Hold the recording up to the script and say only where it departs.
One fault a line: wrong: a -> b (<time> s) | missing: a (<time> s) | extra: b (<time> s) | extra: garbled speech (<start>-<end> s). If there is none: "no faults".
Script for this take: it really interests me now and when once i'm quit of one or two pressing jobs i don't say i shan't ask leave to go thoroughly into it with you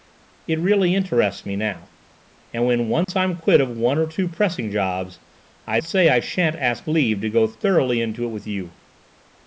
missing: don't (5.8 s)